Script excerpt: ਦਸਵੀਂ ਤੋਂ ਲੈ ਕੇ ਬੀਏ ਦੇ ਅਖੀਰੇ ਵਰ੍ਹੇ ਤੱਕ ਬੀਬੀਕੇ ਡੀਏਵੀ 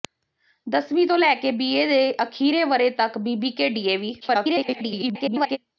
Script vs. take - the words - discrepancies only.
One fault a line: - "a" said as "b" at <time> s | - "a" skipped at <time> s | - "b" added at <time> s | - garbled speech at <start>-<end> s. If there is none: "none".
- garbled speech at 4.2-5.6 s